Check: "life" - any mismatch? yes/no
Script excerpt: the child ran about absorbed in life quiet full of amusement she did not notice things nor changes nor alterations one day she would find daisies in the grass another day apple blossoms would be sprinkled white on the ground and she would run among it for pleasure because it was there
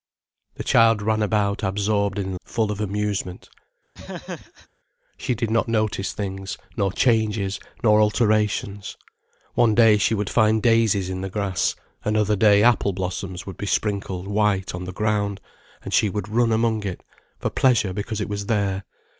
yes